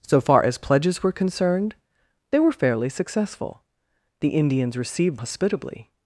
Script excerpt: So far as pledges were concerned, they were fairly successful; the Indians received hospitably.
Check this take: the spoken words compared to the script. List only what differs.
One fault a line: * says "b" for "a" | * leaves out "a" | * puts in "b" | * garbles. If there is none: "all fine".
all fine